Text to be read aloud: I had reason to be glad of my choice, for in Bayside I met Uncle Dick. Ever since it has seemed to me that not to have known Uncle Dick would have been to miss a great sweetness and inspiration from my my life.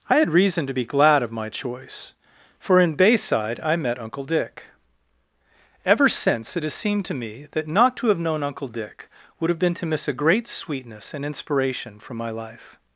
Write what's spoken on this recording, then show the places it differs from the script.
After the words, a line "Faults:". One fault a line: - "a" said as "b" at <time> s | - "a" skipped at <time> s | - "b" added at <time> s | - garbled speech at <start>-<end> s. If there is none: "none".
I had reason to be glad of my choice, for in Bayside I met Uncle Dick. Ever since it has seemed to me that not to have known Uncle Dick would have been to miss a great sweetness and inspiration from my life.
Faults:
- "my" skipped at 12.3 s